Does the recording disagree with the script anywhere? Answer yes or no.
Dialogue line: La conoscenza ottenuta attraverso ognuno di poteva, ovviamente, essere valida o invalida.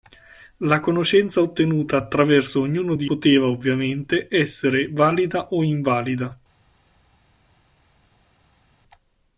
no